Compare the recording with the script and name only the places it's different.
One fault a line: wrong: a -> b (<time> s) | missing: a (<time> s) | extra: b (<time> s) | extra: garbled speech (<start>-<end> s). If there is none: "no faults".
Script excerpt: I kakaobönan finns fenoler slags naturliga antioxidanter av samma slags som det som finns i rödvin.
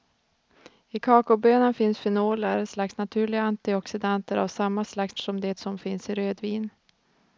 no faults